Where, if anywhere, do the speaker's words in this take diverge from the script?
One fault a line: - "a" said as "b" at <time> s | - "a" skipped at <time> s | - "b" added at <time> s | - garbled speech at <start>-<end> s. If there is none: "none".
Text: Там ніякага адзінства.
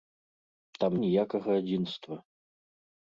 none